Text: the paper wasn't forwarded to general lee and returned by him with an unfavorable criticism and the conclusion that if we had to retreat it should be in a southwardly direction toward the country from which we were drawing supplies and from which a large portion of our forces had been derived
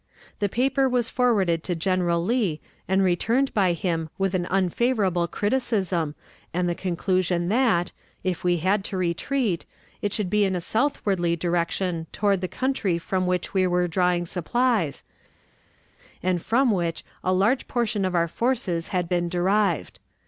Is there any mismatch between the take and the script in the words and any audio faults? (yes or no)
yes